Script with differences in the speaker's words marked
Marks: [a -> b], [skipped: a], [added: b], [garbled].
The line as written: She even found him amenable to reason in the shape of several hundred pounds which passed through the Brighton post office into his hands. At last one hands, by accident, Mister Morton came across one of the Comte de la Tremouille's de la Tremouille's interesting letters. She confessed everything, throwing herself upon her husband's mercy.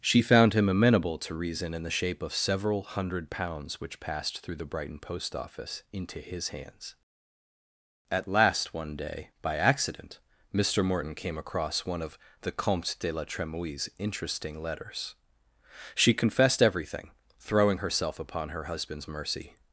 She [skipped: even] found him amenable to reason in the shape of several hundred pounds which passed through the Brighton post office into his hands. At last one [hands, -> day] by accident, Mister Morton came across one of the Comte de la Tremouille's [skipped: de la Tremouille's] interesting letters. She confessed everything, throwing herself upon her husband's mercy.